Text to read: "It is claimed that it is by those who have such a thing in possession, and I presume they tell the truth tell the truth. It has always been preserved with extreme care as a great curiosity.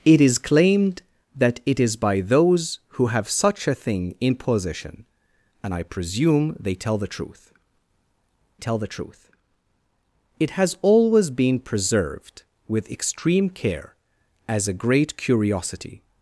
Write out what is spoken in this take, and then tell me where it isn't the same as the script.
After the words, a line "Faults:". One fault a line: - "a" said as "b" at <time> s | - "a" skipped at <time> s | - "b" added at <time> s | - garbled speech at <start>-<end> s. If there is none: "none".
"It is claimed that it is by those who have such a thing in possession, and I presume they tell the truth tell the truth. It has always been preserved with extreme care as a great curiosity.
Faults:
none